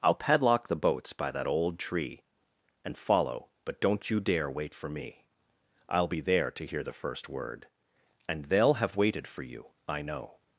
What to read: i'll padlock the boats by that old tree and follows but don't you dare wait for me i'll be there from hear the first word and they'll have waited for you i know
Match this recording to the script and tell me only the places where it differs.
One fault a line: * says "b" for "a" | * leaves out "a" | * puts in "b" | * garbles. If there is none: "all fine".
* says "follow" for "follows"
* says "to" for "from"